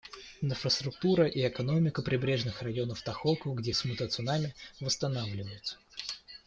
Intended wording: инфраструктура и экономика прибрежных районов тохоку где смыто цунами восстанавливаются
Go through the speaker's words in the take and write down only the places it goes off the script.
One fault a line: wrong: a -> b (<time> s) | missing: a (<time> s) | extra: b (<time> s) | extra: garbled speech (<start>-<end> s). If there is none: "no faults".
no faults